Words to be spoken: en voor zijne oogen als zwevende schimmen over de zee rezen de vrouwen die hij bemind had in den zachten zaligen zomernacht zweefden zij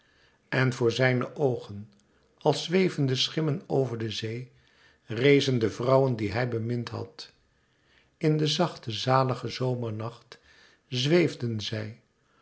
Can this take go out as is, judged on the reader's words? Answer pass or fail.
pass